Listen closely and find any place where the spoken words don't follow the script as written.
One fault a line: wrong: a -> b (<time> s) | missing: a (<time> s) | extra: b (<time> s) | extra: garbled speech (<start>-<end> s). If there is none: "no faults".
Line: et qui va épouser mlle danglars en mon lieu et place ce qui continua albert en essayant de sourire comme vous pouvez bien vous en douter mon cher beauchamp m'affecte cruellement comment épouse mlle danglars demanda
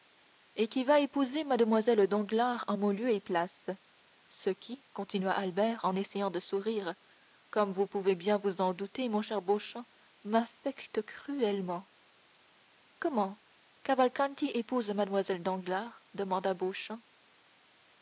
extra: cavalcanti (13.8 s)